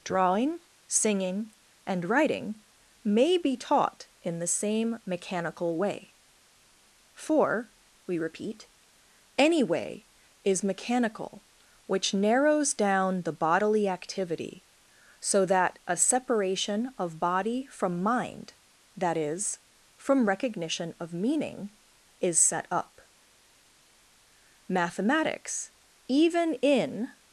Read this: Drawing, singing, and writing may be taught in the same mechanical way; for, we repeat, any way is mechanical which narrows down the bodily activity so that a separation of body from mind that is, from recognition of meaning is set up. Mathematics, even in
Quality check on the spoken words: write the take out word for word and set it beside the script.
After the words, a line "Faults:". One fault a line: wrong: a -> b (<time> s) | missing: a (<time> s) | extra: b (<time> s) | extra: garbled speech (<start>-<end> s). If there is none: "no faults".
Drawing, singing, and writing may be taught in the same mechanical way; for, we repeat, any way is mechanical which narrows down the bodily activity so that a separation of body from mind that is, from recognition of meaning is set up. Mathematics, even in
Faults:
no faults